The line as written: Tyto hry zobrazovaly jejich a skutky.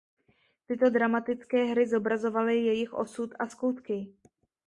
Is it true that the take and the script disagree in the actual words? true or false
true